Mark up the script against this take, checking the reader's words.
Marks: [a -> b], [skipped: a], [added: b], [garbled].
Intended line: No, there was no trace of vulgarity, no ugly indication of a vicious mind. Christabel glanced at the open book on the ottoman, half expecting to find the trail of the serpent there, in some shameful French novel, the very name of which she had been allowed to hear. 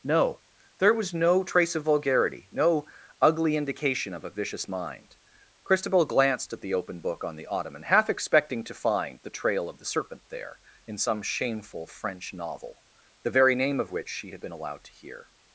No, there was no trace of vulgarity, no ugly indication of a vicious mind. Christabel glanced at the open book on the ottoman, half expecting to find the trail of the serpent there, in some shameful French novel, the very name of which she had been allowed to hear.